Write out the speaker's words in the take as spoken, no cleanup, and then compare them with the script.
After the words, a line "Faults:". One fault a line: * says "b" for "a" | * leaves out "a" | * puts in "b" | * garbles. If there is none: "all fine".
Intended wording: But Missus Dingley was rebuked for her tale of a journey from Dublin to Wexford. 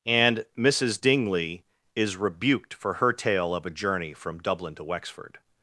And Missus Dingley is rebuked for her tale of a journey from Dublin to Wexford.
Faults:
* says "And" for "But"
* says "is" for "was"